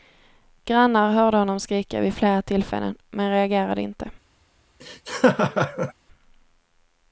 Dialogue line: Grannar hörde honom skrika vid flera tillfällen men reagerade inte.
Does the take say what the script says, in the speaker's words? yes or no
yes